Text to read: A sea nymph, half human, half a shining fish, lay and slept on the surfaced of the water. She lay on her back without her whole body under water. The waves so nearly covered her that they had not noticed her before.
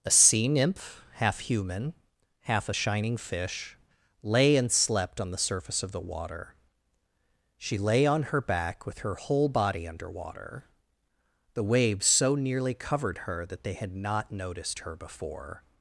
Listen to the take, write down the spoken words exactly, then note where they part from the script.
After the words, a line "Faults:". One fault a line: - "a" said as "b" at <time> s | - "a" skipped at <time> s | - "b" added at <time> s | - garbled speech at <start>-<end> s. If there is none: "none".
A sea nymph, half human, half a shining fish, lay and slept on the surface of the water. She lay on her back with her whole body under water. The waves so nearly covered her that they had not noticed her before.
Faults:
- "surfaced" said as "surface" at 5.4 s
- "without" said as "with" at 8.8 s